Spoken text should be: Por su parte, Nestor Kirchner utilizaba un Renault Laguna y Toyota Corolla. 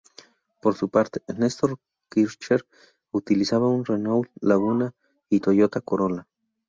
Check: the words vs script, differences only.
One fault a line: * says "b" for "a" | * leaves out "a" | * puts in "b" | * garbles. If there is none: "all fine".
all fine